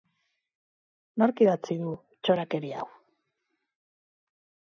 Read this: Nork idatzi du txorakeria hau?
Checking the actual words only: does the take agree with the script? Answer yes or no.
yes